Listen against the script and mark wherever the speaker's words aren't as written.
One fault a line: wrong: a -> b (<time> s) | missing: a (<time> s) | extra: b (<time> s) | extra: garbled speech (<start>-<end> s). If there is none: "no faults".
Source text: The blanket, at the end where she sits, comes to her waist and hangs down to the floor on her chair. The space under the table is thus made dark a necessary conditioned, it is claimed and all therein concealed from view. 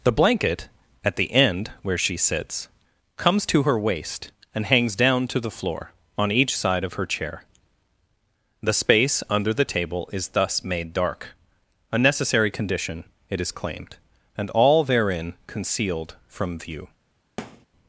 extra: each side of (6.3 s)
wrong: conditioned -> condition (12.5 s)